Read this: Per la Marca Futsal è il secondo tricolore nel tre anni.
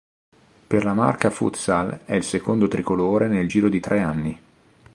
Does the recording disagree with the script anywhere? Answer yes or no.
yes